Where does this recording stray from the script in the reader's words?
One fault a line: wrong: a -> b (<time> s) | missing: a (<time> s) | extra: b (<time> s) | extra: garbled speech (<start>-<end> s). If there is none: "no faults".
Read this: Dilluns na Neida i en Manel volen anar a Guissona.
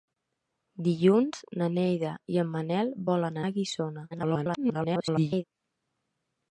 missing: anar (3.4 s)
extra: garbled speech (4.1-5.4 s)